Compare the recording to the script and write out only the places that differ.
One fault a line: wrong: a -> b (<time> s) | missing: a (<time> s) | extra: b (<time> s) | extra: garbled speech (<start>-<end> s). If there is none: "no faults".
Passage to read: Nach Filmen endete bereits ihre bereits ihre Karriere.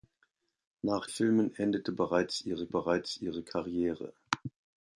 no faults